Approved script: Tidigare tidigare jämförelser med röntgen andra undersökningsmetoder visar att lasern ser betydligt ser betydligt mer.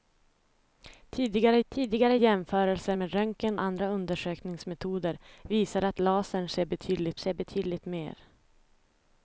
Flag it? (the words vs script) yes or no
no